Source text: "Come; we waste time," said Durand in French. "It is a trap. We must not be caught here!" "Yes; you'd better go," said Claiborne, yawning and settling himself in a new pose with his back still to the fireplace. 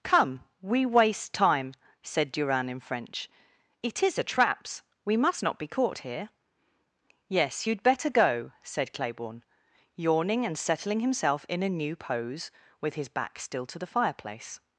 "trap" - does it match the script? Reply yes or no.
no